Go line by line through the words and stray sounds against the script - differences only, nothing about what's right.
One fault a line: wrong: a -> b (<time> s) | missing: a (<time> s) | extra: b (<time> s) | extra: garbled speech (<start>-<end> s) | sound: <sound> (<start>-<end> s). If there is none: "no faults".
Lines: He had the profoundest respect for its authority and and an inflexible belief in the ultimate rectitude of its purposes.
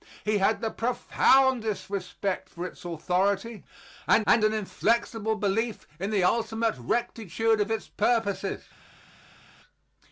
no faults